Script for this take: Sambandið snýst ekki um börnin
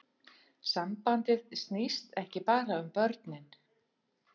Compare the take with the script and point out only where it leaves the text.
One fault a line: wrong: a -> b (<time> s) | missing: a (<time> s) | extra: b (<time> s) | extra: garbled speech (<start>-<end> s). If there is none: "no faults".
extra: bara (2.5 s)